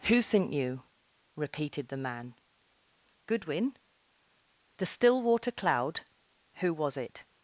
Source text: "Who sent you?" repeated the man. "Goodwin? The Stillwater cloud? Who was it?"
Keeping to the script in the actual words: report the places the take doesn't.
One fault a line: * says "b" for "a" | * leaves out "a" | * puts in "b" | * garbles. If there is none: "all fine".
all fine